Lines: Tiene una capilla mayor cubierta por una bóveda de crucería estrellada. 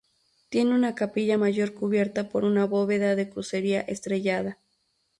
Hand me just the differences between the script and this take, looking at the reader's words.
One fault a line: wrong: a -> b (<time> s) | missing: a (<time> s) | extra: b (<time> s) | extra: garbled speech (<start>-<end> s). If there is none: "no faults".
no faults